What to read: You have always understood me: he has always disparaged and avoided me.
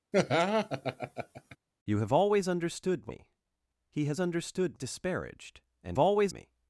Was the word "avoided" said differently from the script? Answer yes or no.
yes